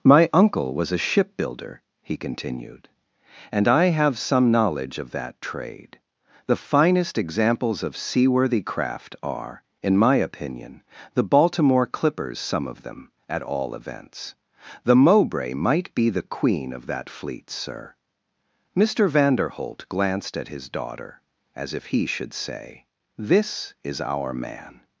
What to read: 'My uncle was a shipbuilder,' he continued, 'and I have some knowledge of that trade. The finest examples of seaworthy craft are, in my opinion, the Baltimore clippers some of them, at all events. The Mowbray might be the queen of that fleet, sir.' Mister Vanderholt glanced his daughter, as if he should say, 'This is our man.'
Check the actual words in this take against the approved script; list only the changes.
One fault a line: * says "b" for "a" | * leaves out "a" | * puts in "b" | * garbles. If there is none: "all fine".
* puts in "at"